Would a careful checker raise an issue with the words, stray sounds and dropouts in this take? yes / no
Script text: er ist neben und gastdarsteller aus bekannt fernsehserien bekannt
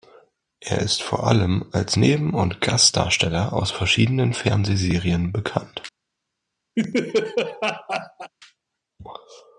yes